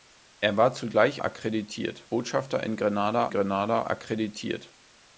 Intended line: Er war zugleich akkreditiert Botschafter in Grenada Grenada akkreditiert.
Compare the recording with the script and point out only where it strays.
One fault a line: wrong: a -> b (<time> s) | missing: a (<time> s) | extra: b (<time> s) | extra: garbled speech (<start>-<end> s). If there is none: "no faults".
no faults